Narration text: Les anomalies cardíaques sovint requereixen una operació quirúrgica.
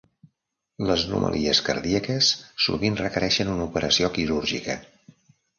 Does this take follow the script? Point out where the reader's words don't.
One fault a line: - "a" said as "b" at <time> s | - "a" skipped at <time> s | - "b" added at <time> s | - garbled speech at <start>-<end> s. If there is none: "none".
none